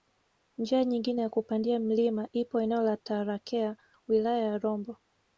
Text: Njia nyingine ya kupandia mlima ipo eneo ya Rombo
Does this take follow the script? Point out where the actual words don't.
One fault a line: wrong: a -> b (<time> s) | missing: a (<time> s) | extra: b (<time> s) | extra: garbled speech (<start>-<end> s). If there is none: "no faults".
extra: la Tarakea wilaya (2.8 s)